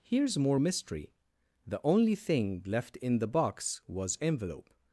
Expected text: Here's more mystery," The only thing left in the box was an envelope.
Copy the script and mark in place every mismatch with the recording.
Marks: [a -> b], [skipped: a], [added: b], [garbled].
Here's more mystery," The only thing left in the box was [skipped: an] envelope.